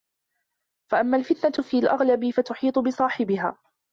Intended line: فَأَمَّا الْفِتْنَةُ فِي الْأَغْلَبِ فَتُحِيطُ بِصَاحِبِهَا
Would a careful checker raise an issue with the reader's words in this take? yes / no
no